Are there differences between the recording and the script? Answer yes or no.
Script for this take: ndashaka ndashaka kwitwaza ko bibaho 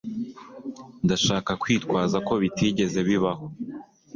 yes